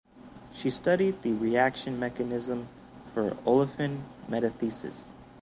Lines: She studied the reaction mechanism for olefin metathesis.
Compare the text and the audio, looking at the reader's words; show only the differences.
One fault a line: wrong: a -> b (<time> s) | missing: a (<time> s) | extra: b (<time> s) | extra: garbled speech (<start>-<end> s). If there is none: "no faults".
no faults